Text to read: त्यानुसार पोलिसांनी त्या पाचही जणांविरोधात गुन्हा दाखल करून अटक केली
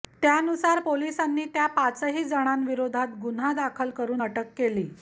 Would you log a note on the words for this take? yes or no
no